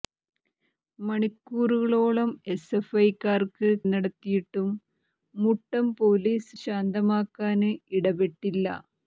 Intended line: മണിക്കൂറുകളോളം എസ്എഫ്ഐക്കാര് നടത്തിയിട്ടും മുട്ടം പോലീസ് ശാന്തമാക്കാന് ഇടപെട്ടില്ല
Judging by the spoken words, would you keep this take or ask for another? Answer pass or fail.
pass